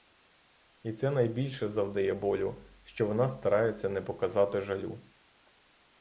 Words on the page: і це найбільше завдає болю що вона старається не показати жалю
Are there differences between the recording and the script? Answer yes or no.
no